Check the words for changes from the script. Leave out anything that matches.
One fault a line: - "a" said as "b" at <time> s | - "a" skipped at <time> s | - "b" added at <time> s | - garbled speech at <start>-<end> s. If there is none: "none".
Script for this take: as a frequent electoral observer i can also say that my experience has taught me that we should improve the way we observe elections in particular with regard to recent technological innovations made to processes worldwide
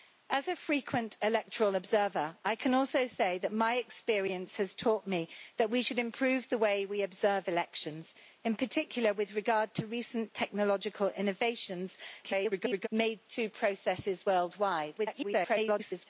- garbled speech at 12.2-12.9 s
- garbled speech at 15.0-16.1 s